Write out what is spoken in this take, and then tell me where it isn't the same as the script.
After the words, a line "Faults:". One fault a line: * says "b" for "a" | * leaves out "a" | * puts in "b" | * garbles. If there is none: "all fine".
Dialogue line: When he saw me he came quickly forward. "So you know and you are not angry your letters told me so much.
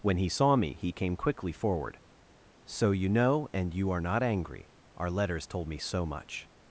When he saw me he came quickly forward. "So you know and you are not angry our letters told me so much.
Faults:
* says "our" for "your"